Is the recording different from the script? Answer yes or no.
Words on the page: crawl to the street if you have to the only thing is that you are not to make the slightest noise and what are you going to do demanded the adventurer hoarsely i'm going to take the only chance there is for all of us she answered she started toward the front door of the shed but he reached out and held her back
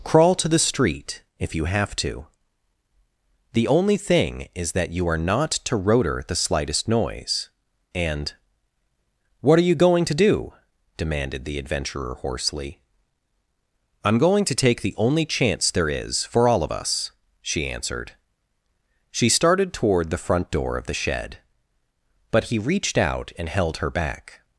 yes